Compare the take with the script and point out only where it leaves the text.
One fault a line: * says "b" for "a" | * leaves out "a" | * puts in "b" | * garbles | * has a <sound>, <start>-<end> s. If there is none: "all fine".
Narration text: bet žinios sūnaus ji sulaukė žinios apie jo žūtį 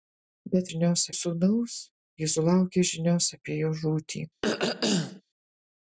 * has a throat clearing, 4.4-5.2 s